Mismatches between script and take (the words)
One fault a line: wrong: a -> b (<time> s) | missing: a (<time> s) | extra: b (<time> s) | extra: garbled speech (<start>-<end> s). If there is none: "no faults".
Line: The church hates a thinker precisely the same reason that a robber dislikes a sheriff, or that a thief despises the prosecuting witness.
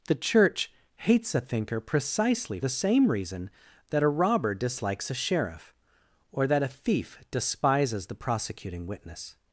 no faults